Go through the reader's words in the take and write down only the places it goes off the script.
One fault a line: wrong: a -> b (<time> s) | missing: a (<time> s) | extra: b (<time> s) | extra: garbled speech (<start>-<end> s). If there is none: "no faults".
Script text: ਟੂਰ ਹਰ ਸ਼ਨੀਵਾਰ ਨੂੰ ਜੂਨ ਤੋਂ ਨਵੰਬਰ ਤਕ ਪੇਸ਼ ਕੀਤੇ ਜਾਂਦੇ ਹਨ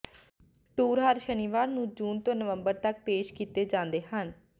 no faults